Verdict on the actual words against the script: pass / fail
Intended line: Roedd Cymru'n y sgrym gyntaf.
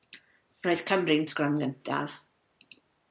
pass